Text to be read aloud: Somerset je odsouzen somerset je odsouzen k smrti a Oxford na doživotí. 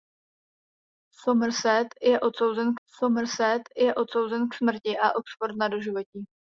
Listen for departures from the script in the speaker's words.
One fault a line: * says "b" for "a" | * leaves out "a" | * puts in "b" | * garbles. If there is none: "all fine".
all fine